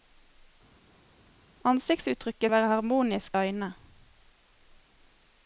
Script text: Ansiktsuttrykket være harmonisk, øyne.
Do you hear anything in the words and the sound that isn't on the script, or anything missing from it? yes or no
no